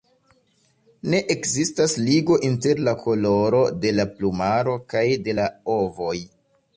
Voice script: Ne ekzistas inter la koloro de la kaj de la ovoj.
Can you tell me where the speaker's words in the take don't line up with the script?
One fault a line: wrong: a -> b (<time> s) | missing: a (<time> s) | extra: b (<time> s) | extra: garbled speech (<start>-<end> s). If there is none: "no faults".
extra: ligo (2.1 s)
extra: plumaro (4.2 s)